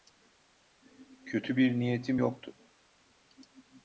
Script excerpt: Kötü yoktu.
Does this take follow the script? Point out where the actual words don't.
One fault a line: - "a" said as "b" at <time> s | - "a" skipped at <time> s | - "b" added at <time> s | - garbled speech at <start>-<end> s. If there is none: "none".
- "bir niyetim" added at 1.6 s